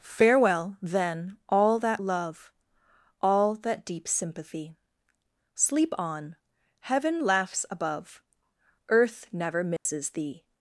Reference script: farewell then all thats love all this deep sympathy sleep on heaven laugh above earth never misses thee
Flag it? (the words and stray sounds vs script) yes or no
yes